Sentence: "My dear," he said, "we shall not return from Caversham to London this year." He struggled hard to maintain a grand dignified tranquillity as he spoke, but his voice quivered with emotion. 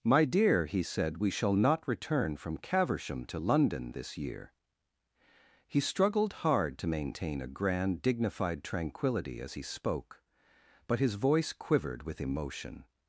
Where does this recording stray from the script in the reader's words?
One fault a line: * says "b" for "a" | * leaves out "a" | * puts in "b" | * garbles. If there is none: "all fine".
all fine